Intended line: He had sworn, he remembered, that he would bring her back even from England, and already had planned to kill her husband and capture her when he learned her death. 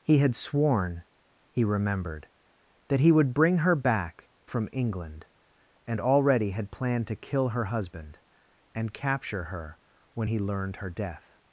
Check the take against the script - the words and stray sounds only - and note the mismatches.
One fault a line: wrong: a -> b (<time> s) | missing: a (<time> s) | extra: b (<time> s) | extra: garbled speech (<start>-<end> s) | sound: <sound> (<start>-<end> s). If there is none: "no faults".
missing: even (4.3 s)